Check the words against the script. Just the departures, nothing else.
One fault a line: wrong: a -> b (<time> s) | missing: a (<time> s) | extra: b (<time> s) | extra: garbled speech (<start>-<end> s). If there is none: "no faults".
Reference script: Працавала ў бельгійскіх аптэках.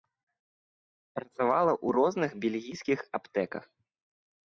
extra: розных (2.0 s)